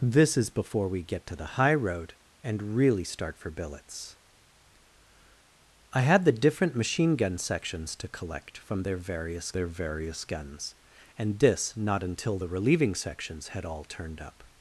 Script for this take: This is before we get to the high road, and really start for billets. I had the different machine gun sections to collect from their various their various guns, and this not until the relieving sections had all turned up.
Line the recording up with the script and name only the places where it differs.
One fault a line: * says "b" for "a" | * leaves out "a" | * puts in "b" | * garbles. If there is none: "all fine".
all fine